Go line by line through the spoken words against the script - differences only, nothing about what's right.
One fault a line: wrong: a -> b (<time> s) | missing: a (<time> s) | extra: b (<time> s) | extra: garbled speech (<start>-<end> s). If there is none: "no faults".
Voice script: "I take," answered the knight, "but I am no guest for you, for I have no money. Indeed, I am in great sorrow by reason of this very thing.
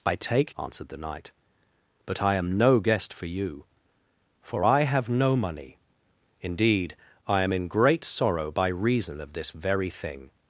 no faults